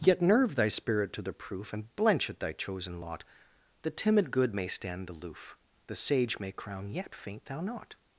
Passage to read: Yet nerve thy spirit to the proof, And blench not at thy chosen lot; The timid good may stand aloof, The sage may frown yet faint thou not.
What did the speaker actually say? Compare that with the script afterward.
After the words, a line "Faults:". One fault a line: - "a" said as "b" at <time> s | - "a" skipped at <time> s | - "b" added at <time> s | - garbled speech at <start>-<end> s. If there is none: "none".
Yet nerve thy spirit to the proof, And blench at thy chosen lot; The timid good may stand aloof, The sage may crown yet faint thou not.
Faults:
- "not" skipped at 2.3 s
- "frown" said as "crown" at 6.5 s